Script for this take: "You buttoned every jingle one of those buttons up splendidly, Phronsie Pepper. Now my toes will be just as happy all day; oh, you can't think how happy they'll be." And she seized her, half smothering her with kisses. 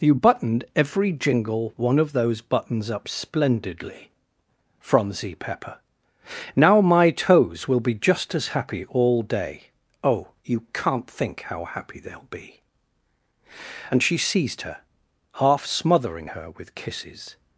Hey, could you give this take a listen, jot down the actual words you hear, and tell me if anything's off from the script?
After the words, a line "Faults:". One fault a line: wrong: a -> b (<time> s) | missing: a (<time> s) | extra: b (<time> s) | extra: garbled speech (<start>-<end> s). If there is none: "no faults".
"You buttoned every jingle one of those buttons up splendidly, Phronsie Pepper. Now my toes will be just as happy all day; oh, you can't think how happy they'll be." And she seized her, half smothering her with kisses.
Faults:
no faults